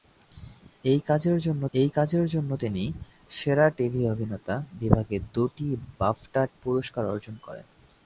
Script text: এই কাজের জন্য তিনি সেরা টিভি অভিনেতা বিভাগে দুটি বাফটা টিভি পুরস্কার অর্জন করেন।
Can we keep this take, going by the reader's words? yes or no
no